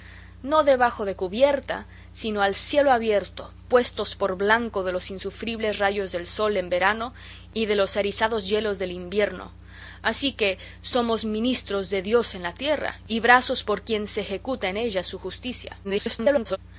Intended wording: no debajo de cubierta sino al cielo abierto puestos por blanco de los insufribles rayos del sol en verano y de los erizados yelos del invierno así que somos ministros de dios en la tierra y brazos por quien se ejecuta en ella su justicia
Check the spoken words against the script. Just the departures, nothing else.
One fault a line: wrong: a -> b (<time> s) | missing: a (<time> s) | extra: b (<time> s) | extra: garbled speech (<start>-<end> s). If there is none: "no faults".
extra: garbled speech (15.8-16.6 s)